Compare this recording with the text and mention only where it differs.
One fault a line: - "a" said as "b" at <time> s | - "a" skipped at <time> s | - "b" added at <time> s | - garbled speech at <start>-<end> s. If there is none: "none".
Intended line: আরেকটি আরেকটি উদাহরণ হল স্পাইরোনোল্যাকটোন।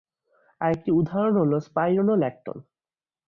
- "আরেকটি" skipped at 0.9 s